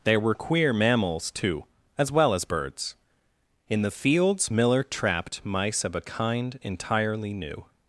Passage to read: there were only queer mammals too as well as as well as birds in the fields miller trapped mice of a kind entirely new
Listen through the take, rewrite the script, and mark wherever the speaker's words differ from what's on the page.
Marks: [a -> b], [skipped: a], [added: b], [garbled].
there were [skipped: only] queer mammals too as well as [skipped: as well as] birds in the fields miller trapped mice of a kind entirely new